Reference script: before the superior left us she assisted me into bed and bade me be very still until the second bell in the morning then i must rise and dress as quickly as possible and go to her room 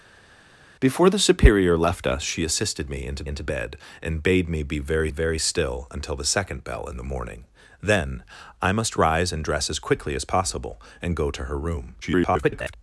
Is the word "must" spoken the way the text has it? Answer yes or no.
yes